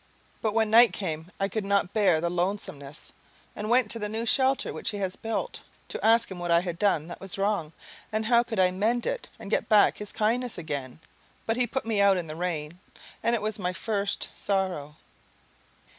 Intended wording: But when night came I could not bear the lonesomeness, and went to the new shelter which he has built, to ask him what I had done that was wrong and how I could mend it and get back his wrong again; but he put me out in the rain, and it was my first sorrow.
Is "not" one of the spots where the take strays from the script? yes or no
no